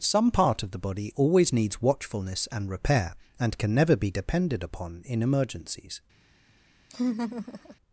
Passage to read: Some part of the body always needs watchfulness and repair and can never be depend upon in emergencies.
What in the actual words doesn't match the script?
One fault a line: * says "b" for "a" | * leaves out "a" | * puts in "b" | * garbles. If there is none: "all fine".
* says "depended" for "depend"